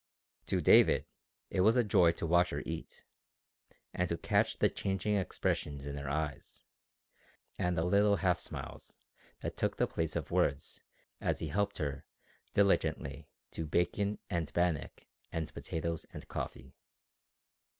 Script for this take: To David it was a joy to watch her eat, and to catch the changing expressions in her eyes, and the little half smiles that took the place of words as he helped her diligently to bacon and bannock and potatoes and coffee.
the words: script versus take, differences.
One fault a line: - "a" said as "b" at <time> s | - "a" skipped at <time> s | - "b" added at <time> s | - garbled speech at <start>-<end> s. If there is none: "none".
none